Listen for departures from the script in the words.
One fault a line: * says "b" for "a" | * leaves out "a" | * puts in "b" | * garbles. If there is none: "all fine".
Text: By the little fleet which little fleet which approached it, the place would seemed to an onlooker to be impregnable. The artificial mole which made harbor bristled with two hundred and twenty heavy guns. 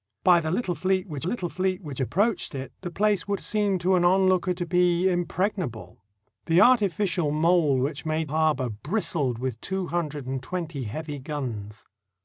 all fine